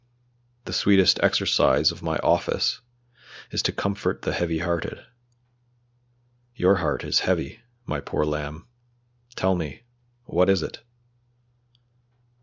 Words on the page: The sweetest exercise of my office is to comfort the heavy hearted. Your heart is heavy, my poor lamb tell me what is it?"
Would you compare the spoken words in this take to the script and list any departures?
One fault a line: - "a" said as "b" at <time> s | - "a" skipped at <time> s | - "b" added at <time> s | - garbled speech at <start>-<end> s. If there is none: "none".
none